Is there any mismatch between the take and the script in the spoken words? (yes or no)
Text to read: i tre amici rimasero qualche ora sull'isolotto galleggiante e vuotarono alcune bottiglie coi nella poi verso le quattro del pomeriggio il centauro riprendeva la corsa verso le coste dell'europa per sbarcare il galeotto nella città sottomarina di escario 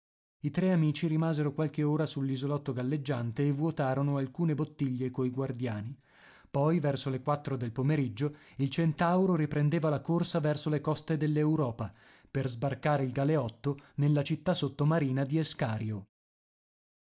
yes